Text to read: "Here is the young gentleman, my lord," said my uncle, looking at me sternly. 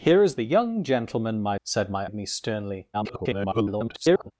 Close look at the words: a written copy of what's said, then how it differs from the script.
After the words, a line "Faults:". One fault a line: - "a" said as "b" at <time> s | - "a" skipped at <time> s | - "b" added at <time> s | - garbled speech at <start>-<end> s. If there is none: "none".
"Here is the young gentleman, my," said my at me sternly. [garbled]
Faults:
- "lord" skipped at 1.6 s
- "uncle looking" skipped at 2.1 s
- garbled speech at 2.9-4.3 s